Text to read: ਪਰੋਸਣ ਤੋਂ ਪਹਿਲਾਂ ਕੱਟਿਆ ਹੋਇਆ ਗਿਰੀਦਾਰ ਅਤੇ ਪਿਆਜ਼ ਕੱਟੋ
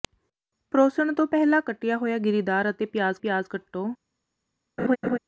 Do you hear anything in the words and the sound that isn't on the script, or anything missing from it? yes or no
yes